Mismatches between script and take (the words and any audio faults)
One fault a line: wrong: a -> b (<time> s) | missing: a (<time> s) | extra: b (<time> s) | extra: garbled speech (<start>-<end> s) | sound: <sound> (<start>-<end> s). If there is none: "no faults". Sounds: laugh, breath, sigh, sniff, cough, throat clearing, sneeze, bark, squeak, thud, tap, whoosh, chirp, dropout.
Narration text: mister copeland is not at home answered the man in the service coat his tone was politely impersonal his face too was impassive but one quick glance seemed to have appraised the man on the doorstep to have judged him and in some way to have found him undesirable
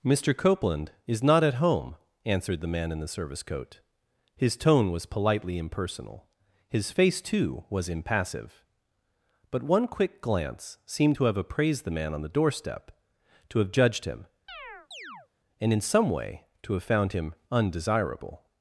sound: chirp (14.5-15.3 s)